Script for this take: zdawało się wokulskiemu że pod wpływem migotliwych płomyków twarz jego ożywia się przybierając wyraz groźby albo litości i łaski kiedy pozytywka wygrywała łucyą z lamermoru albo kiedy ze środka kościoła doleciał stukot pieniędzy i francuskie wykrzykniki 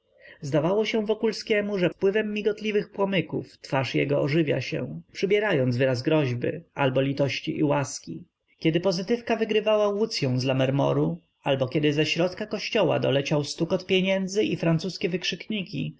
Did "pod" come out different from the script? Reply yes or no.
yes